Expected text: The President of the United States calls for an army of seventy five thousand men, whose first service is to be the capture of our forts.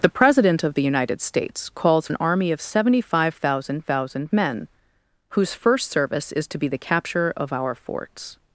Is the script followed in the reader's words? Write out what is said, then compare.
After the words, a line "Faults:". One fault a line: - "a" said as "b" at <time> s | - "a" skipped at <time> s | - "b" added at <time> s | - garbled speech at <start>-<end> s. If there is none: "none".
The President of the United States calls an army of seventy five thousand thousand men, whose first service is to be the capture of our forts.
Faults:
- "for" skipped at 2.1 s
- "thousand" added at 3.8 s